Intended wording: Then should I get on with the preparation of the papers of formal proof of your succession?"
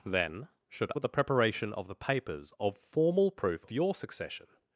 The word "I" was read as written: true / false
false